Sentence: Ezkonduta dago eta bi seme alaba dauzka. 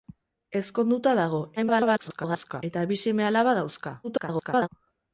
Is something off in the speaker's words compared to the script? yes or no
yes